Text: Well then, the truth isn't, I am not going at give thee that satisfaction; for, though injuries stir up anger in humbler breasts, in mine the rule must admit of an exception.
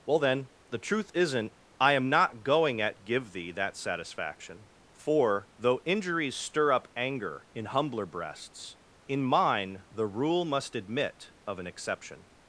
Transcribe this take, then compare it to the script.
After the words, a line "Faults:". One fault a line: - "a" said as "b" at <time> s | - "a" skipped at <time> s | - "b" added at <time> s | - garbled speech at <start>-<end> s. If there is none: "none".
Well then, the truth isn't, I am not going at give thee that satisfaction; for, though injuries stir up anger in humbler breasts, in mine the rule must admit of an exception.
Faults:
none